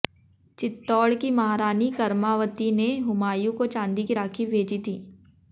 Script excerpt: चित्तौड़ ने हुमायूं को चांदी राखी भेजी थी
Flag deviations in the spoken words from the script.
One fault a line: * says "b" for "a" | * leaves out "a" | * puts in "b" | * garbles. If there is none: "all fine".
* puts in "की महारानी करमावती"
* puts in "की"